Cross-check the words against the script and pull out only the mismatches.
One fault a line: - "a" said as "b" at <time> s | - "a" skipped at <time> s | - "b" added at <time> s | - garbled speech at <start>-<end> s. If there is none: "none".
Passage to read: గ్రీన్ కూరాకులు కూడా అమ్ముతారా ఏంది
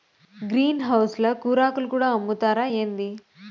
- "హౌస్ ల" added at 0.8 s